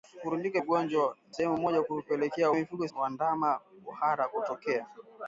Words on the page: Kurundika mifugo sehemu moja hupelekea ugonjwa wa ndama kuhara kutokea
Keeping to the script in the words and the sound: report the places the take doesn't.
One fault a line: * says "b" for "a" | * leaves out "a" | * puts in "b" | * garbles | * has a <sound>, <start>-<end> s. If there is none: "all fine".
* says "ugonjwa" for "mifugo"
* says "mifugo" for "ugonjwa"